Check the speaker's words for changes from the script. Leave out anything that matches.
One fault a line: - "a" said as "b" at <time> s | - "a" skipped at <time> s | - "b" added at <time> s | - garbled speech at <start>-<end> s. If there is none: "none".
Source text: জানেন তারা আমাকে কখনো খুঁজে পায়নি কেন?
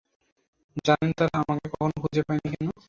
none